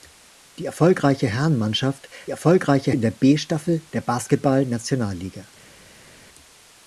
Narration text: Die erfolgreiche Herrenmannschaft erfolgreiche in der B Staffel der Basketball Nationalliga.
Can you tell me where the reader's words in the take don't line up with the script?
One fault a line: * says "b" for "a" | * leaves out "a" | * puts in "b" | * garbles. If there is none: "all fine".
all fine